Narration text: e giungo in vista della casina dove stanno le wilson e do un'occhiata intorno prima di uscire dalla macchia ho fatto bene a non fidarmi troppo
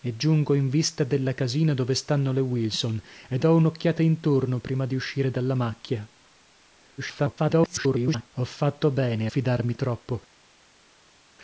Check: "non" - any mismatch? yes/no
yes